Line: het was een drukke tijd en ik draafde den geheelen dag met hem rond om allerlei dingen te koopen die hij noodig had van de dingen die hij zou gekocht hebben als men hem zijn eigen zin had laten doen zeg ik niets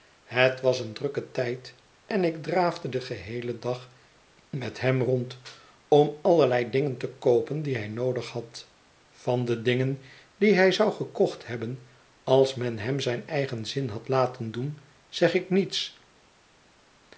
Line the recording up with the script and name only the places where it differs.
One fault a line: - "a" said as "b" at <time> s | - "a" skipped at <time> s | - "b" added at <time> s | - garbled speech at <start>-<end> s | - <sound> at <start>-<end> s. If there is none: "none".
none